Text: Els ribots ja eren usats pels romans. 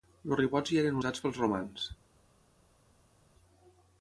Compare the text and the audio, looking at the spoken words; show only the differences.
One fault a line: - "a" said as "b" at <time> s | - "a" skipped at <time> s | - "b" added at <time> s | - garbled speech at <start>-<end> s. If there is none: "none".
none